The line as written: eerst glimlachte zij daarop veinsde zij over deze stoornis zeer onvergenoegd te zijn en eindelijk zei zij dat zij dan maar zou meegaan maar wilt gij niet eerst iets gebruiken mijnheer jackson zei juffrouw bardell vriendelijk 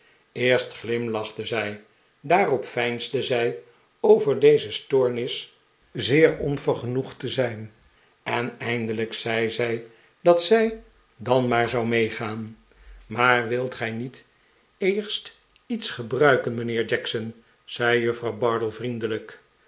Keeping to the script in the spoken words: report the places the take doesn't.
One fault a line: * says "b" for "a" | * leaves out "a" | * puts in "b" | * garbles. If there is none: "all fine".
all fine